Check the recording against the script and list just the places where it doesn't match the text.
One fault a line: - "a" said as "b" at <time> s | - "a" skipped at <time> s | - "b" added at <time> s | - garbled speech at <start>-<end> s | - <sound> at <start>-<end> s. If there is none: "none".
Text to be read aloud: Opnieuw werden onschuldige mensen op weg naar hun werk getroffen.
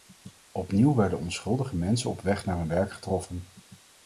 none